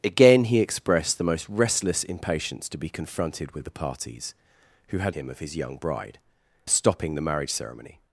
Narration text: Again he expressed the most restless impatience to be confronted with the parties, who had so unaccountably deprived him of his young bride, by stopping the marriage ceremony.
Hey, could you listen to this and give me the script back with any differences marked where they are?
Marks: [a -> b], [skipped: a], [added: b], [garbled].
Again he expressed the most restless impatience to be confronted with the parties, who had [skipped: so unaccountably deprived] him of his young bride, [skipped: by] stopping the marriage ceremony.